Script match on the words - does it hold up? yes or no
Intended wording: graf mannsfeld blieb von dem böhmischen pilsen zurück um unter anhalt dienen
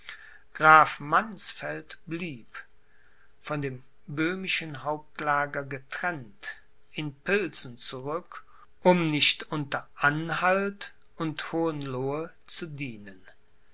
no